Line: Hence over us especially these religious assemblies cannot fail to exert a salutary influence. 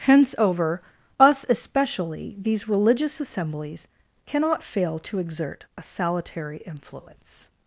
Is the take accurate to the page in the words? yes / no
yes